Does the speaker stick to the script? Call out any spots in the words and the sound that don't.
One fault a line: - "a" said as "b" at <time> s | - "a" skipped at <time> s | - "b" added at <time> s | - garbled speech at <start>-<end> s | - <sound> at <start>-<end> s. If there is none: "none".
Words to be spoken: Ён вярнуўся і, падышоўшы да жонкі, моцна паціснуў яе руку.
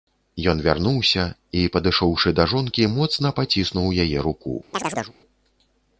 - chirp at 4.7-5.2 s